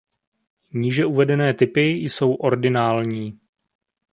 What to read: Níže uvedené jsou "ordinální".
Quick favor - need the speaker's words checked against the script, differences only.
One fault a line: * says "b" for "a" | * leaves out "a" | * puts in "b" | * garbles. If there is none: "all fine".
* puts in "typy"